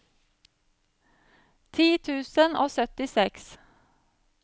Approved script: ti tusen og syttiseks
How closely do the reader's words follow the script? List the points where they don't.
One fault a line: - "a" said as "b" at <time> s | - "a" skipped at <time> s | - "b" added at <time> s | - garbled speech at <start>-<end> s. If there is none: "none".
none